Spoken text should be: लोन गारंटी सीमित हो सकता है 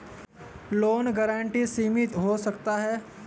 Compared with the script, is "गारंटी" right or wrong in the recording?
right